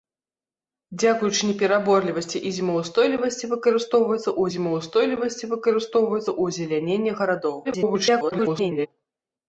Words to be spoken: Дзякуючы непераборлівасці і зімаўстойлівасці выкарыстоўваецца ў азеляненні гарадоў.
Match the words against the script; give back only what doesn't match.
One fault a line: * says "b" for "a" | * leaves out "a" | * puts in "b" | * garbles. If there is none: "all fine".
* puts in "зімаўстойлівасці выкарыстоўваецца ў"
* garbles